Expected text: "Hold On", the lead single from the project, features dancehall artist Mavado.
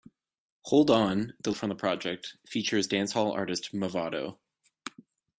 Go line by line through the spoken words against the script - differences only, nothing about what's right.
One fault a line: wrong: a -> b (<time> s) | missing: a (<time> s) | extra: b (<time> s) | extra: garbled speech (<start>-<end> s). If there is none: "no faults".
missing: lead single (1.5 s)